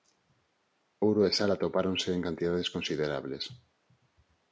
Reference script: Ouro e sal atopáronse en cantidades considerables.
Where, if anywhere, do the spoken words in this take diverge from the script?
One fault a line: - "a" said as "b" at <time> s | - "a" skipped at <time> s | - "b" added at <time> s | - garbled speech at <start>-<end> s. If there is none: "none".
none